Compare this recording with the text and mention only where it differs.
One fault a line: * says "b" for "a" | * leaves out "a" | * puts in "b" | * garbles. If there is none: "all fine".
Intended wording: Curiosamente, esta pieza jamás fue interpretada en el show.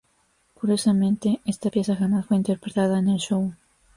all fine